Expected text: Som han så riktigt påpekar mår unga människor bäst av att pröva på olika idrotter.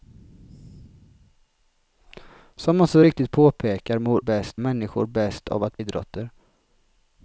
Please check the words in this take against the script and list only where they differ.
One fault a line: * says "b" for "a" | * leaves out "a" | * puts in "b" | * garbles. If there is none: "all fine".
* says "bäst" for "unga"
* leaves out "pröva på olika"